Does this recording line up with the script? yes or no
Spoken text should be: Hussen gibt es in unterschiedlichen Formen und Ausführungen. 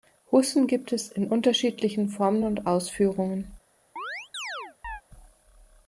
yes